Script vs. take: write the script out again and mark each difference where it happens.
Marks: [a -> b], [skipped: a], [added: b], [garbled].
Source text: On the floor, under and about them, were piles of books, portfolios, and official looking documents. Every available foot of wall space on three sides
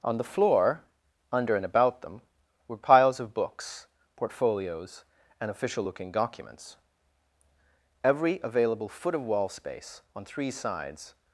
On the floor, under and about them, were piles of books, portfolios, and official looking documents. Every available foot of wall space on three sides